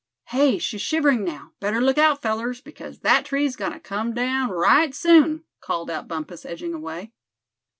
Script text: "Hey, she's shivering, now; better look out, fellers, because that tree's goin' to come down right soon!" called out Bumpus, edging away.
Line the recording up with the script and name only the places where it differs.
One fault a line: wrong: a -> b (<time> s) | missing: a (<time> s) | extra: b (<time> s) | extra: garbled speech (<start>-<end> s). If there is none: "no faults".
no faults